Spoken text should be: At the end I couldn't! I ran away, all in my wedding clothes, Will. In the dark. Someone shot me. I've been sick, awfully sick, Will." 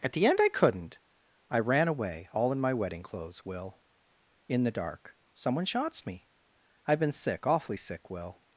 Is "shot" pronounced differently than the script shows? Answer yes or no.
yes